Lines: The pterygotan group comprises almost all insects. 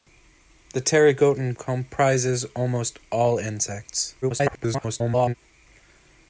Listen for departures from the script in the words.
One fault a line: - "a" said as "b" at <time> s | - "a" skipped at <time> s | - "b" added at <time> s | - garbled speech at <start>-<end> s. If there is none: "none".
- "group" skipped at 1.5 s
- garbled speech at 4.2-5.3 s